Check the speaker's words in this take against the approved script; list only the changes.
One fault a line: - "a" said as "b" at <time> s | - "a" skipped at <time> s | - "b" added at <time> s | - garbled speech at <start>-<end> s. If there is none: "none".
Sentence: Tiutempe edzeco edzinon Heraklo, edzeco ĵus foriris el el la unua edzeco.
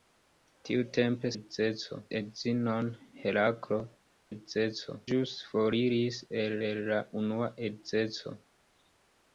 none